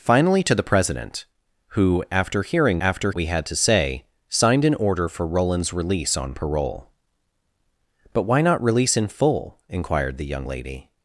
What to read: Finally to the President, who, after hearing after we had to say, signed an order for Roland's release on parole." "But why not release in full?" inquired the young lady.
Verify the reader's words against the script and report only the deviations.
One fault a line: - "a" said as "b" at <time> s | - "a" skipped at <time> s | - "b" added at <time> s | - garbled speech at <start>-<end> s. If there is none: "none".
none